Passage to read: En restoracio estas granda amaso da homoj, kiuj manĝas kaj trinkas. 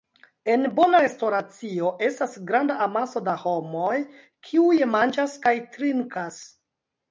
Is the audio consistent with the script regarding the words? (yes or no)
no